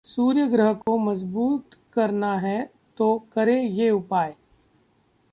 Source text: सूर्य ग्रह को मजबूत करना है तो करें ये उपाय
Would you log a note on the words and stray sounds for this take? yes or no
yes